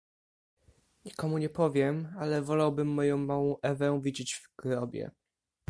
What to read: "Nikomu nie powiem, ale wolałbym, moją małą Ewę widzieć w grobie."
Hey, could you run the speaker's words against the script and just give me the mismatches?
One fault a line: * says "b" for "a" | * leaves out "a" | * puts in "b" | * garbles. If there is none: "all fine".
all fine